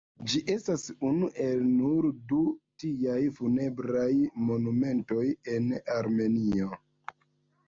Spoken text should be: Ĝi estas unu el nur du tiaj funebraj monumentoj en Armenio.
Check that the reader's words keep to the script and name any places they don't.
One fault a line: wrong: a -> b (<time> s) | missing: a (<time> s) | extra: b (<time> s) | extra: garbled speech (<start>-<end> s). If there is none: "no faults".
no faults